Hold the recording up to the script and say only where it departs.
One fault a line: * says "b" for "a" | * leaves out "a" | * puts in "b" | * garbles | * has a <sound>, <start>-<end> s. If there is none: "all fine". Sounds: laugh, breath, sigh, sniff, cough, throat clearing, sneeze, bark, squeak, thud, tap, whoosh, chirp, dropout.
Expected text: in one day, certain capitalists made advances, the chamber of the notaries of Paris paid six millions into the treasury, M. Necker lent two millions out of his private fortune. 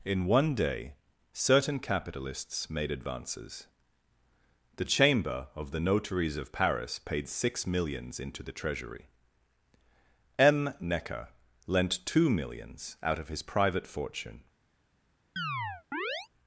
* has a chirp, 15.4-16.3 s